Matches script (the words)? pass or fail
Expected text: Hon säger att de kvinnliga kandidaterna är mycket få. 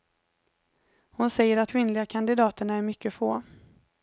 fail